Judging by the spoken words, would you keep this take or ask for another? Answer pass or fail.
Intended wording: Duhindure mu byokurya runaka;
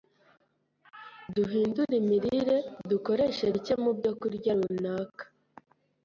fail